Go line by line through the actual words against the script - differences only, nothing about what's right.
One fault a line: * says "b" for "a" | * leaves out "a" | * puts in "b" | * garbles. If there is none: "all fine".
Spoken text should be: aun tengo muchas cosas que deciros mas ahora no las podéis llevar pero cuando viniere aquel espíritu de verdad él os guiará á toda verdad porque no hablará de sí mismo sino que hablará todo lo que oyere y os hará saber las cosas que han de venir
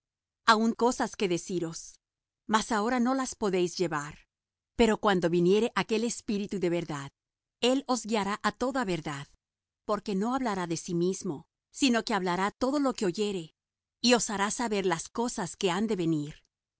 * leaves out "tengo muchas"